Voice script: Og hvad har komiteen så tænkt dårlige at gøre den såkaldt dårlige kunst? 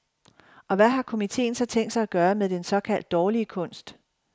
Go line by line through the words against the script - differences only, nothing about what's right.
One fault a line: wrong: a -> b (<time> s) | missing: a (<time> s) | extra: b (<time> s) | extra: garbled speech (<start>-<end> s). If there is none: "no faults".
wrong: dårlige -> sig (1.9 s)
extra: med (2.3 s)